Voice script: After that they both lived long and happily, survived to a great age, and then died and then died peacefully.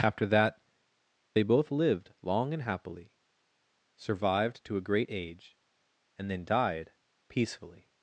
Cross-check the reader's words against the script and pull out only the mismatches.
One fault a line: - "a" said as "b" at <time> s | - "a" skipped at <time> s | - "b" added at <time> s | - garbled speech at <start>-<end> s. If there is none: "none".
- "and then died" skipped at 6.9 s